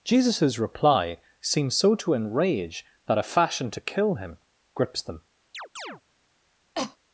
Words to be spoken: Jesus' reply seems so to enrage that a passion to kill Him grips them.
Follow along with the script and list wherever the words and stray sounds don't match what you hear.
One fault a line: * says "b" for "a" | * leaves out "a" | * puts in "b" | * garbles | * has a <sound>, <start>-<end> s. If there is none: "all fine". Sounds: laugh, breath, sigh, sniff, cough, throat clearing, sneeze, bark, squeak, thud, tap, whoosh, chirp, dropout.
* says "fashion" for "passion"
* has a chirp, 5.5-6.0 s
* has a cough, 6.7-7.0 s